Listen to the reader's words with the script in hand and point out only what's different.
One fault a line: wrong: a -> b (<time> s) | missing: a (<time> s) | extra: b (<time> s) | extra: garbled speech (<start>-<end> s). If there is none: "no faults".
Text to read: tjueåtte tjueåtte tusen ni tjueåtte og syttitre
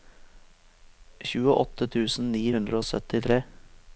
missing: tjueåtte (1.9 s)
wrong: tjueåtte -> hundre (2.5 s)